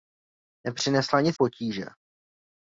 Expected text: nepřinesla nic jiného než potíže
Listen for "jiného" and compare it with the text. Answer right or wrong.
wrong